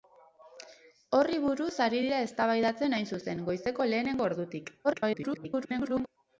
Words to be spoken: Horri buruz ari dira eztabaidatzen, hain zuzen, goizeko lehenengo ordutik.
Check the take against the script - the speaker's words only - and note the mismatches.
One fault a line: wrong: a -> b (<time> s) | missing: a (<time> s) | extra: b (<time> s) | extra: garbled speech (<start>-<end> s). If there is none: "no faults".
extra: garbled speech (4.8-6.1 s)